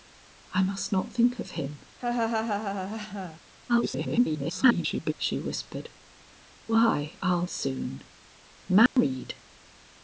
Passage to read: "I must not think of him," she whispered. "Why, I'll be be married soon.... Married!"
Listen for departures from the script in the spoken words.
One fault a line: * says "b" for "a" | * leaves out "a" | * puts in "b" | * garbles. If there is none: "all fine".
* garbles
* leaves out "be be married"